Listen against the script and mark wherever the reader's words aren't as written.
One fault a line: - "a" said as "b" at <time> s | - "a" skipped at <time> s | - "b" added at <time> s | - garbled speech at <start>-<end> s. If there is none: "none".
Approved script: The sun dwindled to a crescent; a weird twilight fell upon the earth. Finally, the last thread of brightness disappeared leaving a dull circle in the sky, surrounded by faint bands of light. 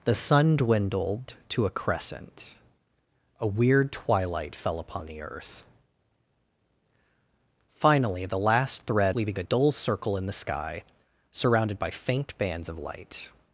- "of brightness disappeared" skipped at 9.2 s